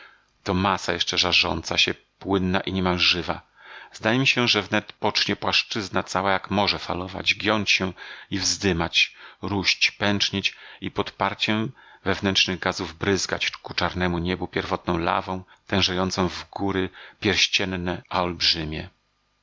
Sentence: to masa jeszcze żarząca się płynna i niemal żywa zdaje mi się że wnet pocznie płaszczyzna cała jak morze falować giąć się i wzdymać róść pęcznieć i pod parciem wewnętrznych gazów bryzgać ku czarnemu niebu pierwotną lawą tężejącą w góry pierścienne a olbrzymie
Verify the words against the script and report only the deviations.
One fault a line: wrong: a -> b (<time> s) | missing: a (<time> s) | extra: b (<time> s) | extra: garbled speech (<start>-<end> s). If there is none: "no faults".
no faults